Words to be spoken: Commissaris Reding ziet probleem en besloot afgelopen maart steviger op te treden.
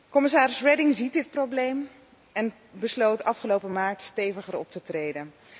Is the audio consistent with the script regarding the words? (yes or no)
no